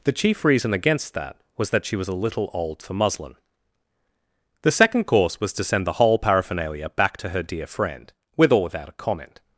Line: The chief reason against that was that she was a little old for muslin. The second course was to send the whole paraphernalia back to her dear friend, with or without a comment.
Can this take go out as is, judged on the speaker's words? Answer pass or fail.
pass